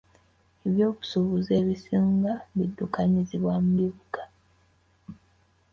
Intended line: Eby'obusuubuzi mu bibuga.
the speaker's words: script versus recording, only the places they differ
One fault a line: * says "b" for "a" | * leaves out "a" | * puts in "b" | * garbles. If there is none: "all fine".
* puts in "ebisinga biddukanyizibwa"